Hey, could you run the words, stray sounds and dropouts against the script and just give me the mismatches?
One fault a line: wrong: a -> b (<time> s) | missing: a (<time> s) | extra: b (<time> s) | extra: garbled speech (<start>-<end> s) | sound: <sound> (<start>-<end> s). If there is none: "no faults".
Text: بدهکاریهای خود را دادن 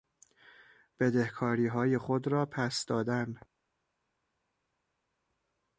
extra: پس (2.5 s)